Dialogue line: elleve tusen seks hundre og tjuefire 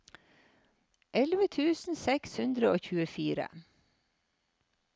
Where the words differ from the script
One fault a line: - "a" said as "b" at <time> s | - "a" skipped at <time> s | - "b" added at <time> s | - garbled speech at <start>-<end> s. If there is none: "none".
none